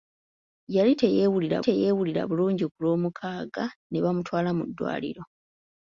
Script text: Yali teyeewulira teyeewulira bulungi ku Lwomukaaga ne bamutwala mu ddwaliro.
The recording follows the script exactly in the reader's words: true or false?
true